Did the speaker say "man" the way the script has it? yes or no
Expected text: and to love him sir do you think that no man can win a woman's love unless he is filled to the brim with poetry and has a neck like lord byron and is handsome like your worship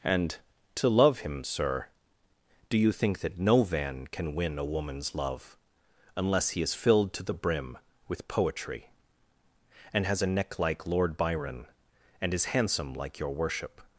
no